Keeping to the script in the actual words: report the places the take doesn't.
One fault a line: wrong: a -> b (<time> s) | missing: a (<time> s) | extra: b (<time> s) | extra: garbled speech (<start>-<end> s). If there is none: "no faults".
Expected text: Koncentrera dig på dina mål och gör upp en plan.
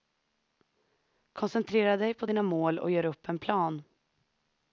no faults